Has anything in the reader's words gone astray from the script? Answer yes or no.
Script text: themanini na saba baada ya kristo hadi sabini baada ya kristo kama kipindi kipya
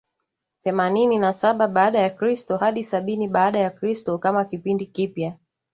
no